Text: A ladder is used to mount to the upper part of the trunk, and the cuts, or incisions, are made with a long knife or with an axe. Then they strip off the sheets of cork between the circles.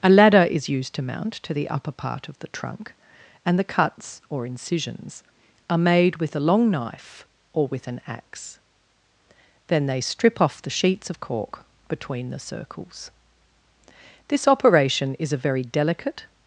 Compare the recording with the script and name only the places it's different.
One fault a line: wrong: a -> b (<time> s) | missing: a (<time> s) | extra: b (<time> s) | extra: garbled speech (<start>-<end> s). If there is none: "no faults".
extra: This operation is a very delicate (14.3 s)